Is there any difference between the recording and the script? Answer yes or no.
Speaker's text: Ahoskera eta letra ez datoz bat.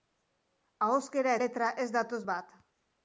yes